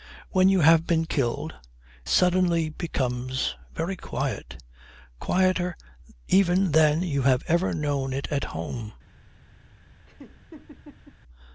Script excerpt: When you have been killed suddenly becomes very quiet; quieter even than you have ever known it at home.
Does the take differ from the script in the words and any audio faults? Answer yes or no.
yes